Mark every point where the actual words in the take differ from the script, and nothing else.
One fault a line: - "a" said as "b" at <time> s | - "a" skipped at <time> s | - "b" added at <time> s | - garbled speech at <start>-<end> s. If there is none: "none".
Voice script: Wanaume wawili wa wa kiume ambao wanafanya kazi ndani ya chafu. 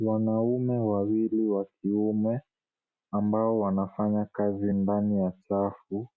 - "wa" skipped at 1.6 s